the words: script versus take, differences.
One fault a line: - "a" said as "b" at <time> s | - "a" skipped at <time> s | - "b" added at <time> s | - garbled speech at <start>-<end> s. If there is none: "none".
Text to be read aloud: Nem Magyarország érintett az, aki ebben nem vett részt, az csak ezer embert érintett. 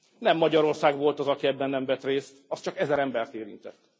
- "érintett" said as "volt" at 1.0 s